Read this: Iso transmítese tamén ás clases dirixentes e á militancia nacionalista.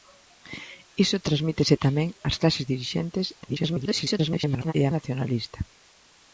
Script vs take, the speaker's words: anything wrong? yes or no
yes